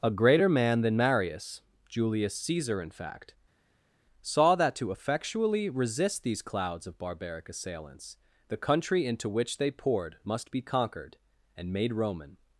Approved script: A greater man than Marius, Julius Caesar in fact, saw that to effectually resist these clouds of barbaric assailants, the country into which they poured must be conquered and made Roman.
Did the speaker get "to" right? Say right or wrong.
right